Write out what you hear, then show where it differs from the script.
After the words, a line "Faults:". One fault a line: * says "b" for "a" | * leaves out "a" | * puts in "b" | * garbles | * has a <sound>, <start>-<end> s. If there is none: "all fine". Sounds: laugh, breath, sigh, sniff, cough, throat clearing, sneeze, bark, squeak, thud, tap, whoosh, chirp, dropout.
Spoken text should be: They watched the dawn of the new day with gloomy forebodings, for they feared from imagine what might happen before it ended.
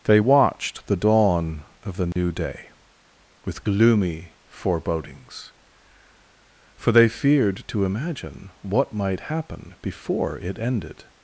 They watched the dawn of the new day with gloomy forebodings, for they feared to imagine what might happen before it ended.
Faults:
* has a dropout, 2.1-2.2 s
* says "to" for "from"